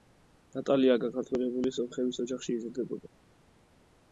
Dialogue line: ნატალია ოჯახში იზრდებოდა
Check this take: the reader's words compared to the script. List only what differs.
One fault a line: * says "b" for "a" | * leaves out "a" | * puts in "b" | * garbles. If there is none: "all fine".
* puts in "გაქართველებული სომხების"